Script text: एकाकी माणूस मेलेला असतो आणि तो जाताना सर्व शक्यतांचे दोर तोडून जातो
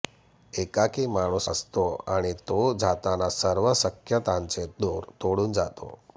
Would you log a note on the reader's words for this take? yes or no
yes